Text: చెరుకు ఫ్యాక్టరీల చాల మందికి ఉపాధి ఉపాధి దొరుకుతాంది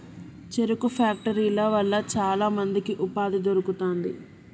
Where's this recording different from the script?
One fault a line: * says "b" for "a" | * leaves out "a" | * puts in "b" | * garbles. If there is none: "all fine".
* puts in "వల్ల"
* leaves out "ఉపాధి"